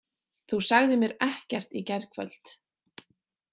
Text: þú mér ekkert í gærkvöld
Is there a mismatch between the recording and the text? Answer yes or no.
yes